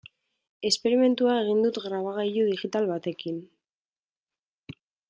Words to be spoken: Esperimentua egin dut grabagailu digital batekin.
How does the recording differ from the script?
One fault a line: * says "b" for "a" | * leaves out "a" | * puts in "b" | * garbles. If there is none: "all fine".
all fine